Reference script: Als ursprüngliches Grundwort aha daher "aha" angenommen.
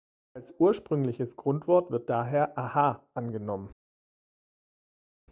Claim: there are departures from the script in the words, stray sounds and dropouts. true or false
true